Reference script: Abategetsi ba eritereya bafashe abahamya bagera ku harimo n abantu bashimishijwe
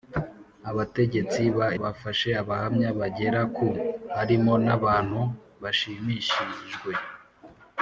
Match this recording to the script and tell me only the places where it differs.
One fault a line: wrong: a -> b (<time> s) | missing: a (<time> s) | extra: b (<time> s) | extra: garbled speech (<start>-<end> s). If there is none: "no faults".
missing: eritereya (1.7 s)